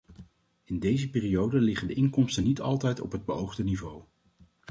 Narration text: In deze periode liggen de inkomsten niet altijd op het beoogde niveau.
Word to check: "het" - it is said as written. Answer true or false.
true